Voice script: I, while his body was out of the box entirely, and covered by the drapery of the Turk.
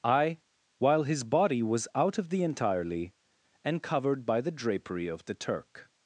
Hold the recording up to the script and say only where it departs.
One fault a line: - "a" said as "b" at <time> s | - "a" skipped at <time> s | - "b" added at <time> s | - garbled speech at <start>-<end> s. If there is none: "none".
- "box" skipped at 2.4 s